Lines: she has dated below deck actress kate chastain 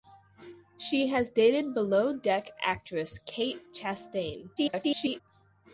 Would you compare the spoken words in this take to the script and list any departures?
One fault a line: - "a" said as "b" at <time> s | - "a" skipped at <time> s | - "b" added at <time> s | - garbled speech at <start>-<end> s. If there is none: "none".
- garbled speech at 4.6-5.2 s